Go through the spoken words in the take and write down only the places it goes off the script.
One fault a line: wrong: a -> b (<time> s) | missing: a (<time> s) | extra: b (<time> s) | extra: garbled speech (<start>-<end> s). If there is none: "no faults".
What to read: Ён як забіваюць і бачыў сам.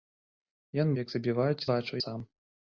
no faults